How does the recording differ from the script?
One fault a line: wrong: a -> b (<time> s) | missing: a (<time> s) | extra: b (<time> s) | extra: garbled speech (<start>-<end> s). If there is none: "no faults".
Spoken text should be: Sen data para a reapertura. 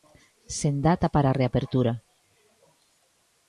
no faults